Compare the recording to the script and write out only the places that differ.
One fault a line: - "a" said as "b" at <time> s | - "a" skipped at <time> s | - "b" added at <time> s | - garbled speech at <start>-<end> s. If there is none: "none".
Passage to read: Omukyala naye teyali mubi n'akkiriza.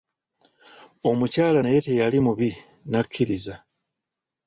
none